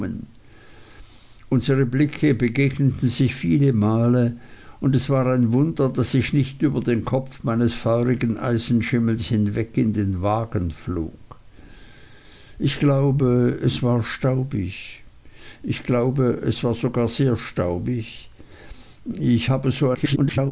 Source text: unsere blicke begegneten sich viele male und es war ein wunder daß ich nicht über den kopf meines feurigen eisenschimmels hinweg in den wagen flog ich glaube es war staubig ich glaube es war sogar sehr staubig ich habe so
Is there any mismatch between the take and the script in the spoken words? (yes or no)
yes